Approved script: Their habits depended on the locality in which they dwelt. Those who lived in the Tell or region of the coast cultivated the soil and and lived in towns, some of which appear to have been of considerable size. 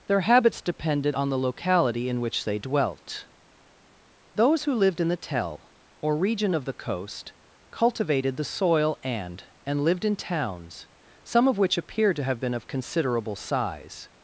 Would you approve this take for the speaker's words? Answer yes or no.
yes